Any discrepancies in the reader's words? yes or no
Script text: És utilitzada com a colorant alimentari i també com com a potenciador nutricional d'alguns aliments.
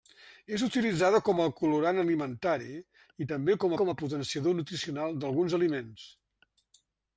no